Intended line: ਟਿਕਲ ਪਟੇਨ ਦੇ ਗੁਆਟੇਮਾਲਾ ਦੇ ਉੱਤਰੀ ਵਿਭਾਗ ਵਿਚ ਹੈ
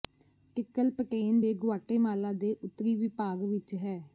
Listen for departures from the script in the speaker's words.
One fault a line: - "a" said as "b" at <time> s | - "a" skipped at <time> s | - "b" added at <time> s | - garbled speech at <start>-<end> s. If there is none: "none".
none